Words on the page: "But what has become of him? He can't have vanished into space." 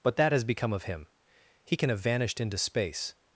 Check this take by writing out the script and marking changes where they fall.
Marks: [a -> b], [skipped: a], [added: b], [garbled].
"But [what -> that] has become of him? He [can't -> can] have vanished into space."